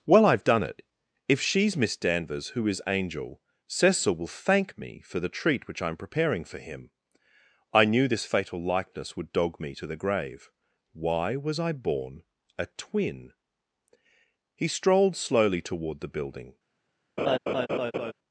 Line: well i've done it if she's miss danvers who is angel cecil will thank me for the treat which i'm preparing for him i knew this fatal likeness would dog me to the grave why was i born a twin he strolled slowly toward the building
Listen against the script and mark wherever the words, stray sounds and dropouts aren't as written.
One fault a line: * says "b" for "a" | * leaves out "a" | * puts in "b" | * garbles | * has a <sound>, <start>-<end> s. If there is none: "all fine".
* has a laugh, 17.2-18.1 s